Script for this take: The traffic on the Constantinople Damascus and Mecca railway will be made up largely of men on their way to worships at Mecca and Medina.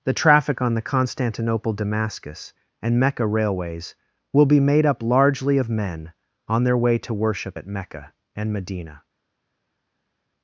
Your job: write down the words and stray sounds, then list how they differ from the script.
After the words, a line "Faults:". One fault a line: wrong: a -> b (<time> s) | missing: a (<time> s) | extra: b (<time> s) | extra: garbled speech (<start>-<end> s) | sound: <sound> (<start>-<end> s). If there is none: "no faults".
The traffic on the Constantinople Damascus and Mecca railways will be made up largely of men on their way to worship at Mecca and Medina.
Faults:
wrong: railway -> railways (3.3 s)
wrong: worships -> worship (7.1 s)